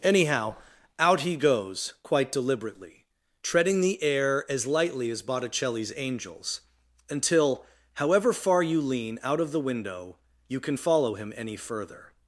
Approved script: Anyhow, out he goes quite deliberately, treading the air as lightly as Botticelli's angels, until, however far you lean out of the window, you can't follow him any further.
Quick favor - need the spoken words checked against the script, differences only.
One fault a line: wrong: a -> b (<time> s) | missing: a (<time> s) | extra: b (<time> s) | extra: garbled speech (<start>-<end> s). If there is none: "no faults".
wrong: can't -> can (10.6 s)